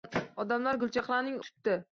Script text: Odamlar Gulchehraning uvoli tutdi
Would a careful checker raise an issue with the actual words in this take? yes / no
yes